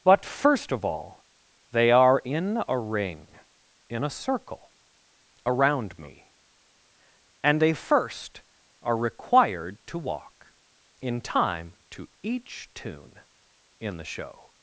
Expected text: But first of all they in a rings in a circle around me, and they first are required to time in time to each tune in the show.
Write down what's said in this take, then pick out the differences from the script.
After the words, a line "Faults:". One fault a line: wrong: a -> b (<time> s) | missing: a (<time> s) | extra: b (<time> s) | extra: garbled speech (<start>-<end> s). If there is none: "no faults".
But first of all they are in a ring in a circle around me, and they first are required to walk in time to each tune in the show.
Faults:
extra: are (1.9 s)
wrong: rings -> ring (2.8 s)
wrong: time -> walk (10.0 s)